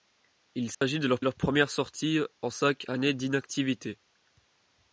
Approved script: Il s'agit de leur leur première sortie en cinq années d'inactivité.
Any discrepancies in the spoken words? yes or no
no